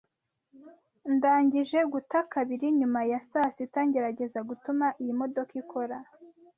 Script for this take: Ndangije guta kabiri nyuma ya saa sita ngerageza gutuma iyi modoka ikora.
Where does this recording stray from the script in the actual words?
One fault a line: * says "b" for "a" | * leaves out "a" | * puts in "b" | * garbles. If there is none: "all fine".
all fine